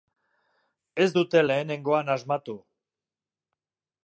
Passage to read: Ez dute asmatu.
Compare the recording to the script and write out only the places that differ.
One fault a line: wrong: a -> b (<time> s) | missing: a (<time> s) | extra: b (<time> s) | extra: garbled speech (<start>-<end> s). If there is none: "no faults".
extra: lehenengoan (1.4 s)